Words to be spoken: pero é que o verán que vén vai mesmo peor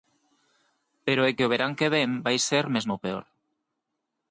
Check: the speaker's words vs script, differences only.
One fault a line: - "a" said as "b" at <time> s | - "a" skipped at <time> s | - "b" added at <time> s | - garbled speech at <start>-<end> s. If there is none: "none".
- "ser" added at 2.5 s